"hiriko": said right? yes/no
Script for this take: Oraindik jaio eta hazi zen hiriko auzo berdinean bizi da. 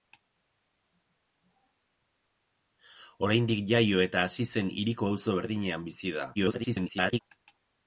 yes